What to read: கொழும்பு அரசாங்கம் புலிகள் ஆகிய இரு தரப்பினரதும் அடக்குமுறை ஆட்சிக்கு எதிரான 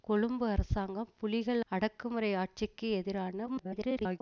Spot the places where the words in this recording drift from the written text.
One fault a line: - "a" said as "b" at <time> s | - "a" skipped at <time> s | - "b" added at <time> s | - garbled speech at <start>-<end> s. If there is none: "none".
- "ஆகிய இரு தரப்பினரதும்" skipped at 1.6 s
- garbled speech at 3.5-4.2 s